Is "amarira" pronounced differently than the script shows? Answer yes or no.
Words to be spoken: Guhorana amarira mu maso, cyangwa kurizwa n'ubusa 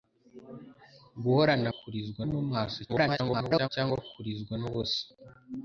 yes